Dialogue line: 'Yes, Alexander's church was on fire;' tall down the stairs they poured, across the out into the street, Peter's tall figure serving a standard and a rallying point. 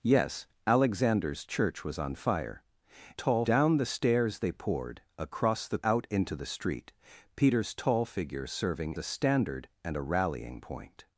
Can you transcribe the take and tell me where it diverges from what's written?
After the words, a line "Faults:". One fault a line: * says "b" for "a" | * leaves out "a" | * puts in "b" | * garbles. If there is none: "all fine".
'Yes, Alexander's church was on fire;' tall down the stairs they poured, across the out into the street, Peter's tall figure serving a standard and a rallying point.
Faults:
all fine